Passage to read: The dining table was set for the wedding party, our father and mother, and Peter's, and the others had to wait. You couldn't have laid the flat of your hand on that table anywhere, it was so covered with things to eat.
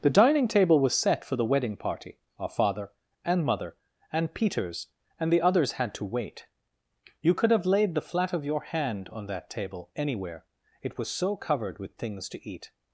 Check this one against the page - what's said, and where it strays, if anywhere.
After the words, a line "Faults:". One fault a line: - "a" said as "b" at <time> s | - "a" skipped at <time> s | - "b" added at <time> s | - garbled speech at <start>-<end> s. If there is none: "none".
The dining table was set for the wedding party, our father and mother, and Peter's, and the others had to wait. You could have laid the flat of your hand on that table anywhere, it was so covered with things to eat.
Faults:
- "couldn't" said as "could" at 7.3 s